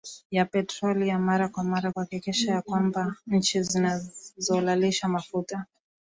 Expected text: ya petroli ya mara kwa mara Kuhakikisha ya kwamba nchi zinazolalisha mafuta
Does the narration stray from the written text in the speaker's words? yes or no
no